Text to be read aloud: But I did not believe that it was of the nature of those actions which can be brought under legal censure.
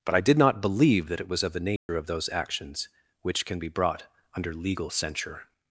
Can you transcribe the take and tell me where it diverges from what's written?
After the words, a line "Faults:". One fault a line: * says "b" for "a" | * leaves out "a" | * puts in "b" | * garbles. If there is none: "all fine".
But I did not believe that it was of the nature of those actions which can be brought under legal censure.
Faults:
all fine